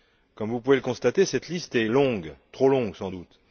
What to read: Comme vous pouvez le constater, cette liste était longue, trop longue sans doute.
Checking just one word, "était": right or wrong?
wrong